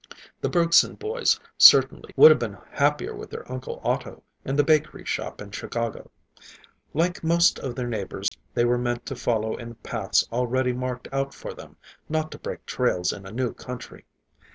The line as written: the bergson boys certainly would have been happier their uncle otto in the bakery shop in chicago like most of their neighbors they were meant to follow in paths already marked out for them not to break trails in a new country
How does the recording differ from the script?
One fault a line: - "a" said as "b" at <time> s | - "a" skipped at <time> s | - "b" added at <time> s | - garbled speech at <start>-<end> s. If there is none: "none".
- "with" added at 3.1 s